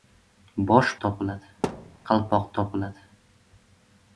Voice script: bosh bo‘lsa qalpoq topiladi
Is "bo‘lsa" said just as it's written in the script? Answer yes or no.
no